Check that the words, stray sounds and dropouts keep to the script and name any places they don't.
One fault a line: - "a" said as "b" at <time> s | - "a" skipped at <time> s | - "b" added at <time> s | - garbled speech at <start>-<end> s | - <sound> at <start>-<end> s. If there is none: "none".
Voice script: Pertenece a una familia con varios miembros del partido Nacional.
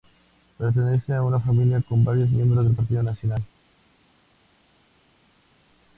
none